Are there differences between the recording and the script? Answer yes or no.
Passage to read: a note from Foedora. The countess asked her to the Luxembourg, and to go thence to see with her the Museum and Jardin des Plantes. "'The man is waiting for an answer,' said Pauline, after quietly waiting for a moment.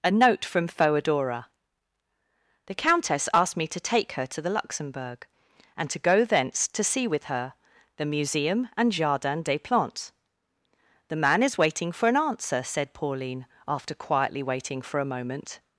yes